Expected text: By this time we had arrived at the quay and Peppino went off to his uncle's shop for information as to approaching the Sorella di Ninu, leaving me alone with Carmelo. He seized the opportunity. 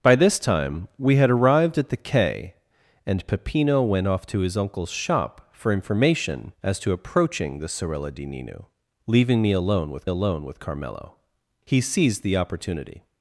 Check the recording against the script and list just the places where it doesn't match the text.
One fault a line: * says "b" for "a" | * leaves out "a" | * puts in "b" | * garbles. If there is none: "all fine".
* puts in "alone with"